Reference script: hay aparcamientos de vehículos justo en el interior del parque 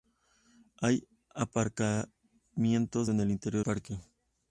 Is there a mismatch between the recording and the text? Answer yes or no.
yes